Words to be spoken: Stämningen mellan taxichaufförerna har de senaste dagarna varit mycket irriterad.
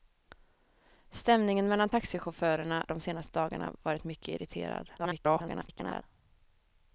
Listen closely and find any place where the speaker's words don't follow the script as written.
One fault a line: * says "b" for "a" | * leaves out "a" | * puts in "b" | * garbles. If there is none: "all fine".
* leaves out "har"
* garbles